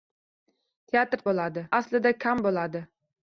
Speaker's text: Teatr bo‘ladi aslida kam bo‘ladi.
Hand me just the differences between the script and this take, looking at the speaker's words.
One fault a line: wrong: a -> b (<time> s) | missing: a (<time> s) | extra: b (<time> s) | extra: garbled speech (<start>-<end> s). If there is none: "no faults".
no faults